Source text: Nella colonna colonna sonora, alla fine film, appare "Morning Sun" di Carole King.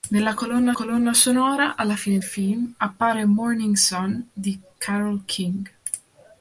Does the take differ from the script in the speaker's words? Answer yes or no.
no